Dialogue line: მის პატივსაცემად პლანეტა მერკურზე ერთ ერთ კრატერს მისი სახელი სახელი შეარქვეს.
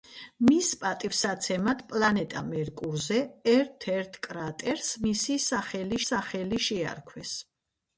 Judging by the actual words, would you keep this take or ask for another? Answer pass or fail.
pass